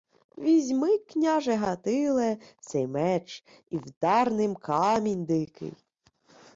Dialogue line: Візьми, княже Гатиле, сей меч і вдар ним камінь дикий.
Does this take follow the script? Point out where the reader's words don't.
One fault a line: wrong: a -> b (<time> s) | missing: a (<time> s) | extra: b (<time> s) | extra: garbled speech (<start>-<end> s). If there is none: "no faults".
no faults